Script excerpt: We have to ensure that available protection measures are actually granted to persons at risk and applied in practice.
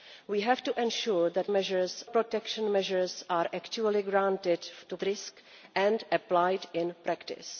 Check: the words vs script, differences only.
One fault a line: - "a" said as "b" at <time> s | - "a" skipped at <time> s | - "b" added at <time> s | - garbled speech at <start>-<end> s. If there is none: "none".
- "available" said as "measures" at 1.5 s
- "persons at" skipped at 5.0 s